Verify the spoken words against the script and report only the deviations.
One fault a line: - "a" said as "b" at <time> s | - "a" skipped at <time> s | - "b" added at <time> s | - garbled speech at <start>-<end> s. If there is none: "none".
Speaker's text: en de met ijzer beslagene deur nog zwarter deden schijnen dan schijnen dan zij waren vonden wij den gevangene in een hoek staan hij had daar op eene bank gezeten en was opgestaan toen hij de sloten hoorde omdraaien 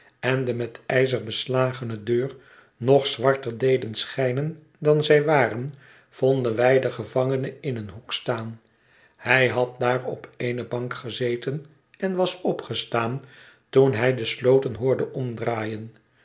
- "schijnen dan" skipped at 5.0 s